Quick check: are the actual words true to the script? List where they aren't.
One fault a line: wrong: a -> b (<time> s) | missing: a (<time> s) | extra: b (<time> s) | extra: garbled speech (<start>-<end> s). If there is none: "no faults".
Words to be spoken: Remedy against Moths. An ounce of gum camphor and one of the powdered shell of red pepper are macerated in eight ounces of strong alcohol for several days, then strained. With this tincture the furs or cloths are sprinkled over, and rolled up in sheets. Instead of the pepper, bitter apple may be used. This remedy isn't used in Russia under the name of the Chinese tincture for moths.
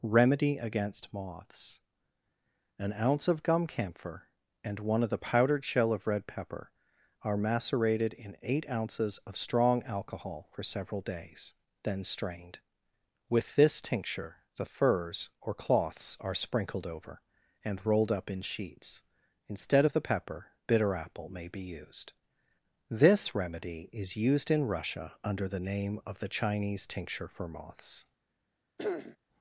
wrong: isn't -> is (23.9 s)